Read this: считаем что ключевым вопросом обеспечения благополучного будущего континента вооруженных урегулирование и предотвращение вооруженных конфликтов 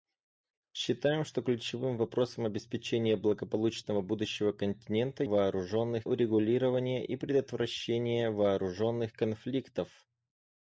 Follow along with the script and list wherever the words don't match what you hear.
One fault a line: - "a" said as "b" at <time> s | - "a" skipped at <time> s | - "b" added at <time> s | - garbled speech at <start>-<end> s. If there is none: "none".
none